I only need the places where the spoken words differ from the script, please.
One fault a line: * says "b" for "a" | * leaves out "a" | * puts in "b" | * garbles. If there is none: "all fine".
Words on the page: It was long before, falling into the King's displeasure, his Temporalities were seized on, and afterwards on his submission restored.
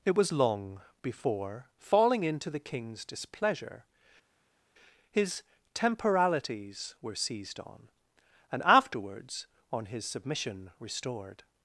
all fine